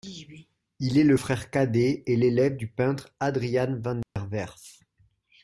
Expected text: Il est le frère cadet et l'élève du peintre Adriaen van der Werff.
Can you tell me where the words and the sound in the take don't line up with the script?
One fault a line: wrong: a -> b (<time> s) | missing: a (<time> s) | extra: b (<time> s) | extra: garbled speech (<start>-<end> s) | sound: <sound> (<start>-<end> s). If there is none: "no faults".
sound: dropout (4.0-4.2 s)